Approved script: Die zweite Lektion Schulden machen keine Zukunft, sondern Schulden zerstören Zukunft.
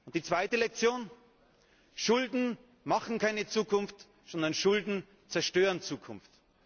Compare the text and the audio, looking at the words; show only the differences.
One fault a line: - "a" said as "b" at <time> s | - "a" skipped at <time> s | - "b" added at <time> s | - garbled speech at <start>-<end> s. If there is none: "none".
none